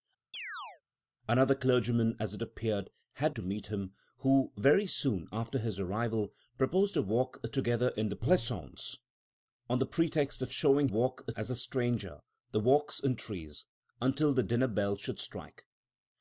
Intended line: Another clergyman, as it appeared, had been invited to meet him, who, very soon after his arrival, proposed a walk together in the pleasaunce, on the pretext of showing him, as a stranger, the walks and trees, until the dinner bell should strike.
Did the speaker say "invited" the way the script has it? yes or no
no